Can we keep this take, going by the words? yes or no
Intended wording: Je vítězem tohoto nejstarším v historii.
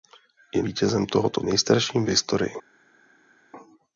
yes